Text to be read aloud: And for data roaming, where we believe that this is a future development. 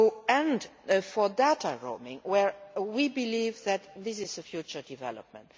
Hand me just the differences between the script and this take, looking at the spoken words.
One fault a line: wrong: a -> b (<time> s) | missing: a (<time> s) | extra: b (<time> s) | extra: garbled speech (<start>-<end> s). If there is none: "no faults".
no faults